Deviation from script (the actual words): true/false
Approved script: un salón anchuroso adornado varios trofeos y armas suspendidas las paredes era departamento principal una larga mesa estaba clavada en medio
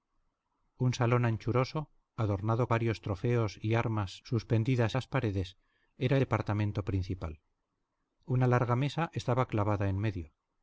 false